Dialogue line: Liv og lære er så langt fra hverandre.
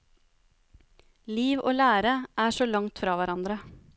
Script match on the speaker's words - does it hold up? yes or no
yes